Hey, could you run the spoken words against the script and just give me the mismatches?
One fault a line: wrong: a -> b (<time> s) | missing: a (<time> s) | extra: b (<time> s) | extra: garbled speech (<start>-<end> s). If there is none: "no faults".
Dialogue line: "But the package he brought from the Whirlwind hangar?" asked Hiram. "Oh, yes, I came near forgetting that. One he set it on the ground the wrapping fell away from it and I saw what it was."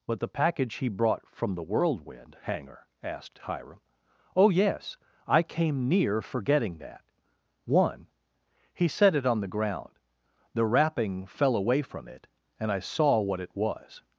no faults